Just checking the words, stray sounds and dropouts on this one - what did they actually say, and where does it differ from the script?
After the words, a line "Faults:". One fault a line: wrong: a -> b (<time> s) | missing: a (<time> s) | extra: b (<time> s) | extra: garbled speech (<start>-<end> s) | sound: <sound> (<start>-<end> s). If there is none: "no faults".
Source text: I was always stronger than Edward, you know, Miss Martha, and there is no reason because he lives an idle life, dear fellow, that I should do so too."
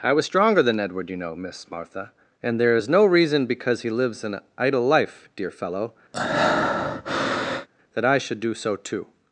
I was stronger than Edward, you know, Miss Martha, and there is no reason because he lives an idle life, dear fellow, that I should do so too."
Faults:
missing: always (0.2 s)
sound: breath (6.1-7.7 s)